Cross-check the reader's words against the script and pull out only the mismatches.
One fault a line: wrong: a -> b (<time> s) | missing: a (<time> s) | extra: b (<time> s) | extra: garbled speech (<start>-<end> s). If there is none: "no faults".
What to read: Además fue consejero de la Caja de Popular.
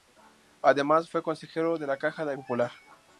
no faults